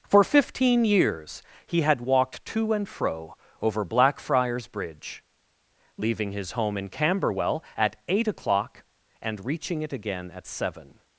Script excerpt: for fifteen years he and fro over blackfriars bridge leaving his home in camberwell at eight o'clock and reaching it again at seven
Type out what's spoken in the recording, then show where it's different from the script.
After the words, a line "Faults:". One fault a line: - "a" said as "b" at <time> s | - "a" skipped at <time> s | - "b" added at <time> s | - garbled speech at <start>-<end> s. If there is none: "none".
for fifteen years he had walked to and fro over blackfriars bridge leaving his home in camberwell at eight o'clock and reaching it again at seven
Faults:
- "had walked to" added at 1.8 s